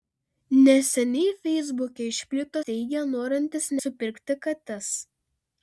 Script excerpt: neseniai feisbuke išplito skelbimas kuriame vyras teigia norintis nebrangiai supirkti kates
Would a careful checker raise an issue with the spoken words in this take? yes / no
yes